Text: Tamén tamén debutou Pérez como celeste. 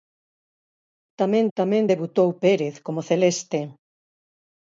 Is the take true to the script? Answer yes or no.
yes